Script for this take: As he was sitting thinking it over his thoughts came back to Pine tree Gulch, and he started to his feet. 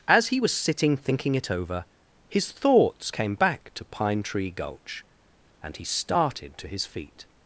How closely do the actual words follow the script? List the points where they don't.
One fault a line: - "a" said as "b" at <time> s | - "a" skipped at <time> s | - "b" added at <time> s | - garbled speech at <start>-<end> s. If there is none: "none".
none